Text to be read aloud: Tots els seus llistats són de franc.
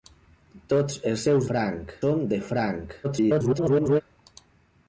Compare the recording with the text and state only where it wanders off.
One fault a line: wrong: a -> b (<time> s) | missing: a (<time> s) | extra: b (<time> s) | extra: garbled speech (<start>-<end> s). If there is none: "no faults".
wrong: llistats -> franc (1.5 s)
extra: garbled speech (3.0-4.0 s)